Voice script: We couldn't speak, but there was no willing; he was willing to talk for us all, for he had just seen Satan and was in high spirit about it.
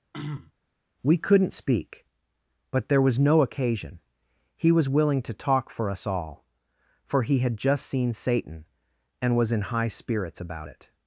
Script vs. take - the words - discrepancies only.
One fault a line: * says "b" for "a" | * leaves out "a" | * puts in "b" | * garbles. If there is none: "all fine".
* says "occasion" for "willing"
* says "spirits" for "spirit"